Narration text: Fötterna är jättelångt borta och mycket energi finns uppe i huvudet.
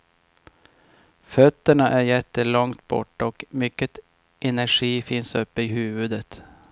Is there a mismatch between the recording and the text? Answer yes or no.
no